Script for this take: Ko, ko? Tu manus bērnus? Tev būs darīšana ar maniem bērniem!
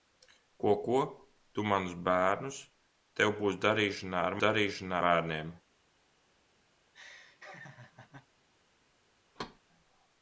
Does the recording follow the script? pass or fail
fail